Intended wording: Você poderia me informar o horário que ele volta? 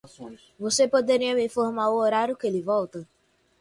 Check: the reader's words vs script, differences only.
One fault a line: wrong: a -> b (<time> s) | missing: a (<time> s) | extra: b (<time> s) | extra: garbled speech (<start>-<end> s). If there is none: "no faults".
no faults